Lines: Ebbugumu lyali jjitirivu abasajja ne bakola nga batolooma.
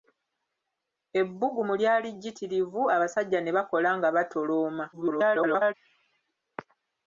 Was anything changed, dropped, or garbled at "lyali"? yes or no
no